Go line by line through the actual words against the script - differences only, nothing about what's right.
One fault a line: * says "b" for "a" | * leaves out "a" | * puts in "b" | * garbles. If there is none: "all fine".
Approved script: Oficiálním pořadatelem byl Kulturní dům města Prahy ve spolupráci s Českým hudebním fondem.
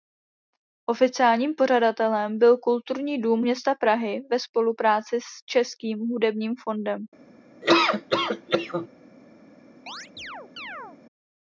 all fine